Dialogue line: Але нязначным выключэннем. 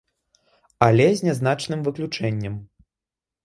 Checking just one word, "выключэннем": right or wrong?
right